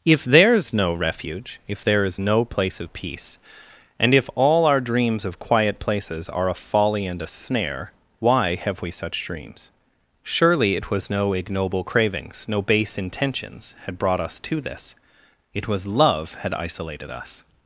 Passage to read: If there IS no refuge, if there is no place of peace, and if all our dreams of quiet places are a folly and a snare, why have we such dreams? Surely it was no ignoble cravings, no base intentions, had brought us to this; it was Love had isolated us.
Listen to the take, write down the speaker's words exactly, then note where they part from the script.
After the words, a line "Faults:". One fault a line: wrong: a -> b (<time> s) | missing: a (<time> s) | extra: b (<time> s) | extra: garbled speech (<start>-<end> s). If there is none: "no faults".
If there IS no refuge, if there is no place of peace, and if all our dreams of quiet places are a folly and a snare, why have we such dreams? Surely it was no ignoble cravings, no base intentions, had brought us to this; it was Love had isolated us.
Faults:
no faults